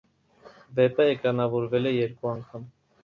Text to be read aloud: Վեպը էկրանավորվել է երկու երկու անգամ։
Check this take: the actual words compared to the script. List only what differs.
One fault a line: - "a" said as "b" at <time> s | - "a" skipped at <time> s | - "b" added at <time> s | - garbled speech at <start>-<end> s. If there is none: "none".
- "երկու" skipped at 2.3 s